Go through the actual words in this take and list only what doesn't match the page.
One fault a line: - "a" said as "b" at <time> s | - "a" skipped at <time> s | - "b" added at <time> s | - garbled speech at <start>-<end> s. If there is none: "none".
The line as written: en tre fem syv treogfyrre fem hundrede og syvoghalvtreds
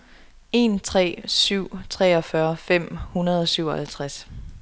- "fem" skipped at 1.2 s